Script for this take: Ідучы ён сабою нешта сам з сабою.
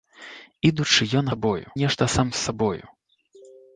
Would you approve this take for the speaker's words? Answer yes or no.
yes